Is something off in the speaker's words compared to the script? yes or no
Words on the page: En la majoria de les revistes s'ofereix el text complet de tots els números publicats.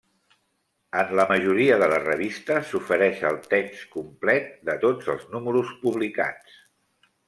no